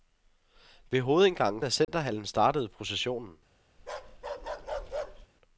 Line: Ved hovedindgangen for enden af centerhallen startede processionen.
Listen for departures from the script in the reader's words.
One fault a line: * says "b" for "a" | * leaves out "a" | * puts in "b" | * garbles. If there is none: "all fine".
* leaves out "for enden"